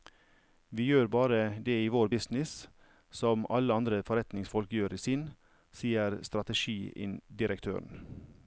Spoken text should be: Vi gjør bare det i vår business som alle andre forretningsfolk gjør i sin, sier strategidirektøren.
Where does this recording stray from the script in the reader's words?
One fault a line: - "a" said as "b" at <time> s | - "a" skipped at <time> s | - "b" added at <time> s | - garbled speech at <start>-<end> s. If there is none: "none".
none